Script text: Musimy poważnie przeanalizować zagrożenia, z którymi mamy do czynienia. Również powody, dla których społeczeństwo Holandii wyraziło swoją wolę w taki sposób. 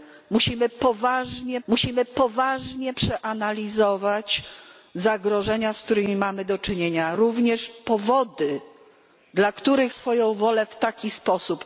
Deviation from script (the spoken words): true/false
true